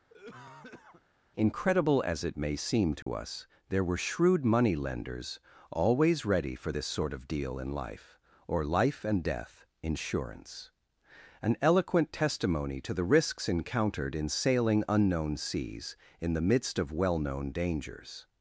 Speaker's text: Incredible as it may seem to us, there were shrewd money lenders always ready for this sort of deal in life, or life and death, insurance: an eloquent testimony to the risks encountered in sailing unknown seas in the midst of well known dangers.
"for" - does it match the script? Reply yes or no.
yes